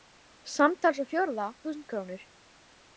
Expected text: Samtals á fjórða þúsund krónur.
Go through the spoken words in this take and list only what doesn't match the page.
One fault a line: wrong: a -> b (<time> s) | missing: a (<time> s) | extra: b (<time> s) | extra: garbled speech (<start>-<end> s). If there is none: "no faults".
no faults